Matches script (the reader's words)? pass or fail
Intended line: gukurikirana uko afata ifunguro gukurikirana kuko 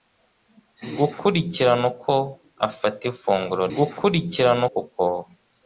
pass